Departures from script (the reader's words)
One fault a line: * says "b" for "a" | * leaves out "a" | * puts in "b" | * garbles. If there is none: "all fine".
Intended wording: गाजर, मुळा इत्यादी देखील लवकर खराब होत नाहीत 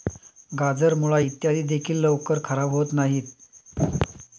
all fine